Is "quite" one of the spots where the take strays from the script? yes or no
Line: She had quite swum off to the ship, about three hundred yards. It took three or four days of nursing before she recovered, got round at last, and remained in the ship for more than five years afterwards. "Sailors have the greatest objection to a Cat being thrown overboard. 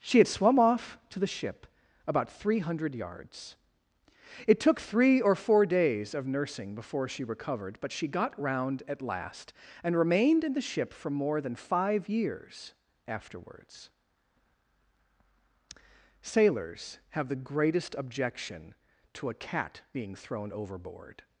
yes